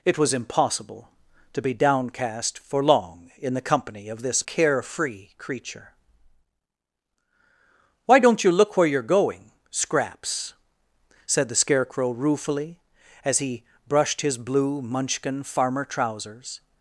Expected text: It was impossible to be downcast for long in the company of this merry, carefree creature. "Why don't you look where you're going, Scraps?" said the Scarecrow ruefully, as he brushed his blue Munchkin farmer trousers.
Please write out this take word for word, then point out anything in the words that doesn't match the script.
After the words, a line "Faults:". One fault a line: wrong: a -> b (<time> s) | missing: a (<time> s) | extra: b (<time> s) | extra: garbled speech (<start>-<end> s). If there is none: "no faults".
It was impossible to be downcast for long in the company of this carefree creature. "Why don't you look where you're going, Scraps?" said the Scarecrow ruefully, as he brushed his blue Munchkin farmer trousers.
Faults:
missing: merry (4.5 s)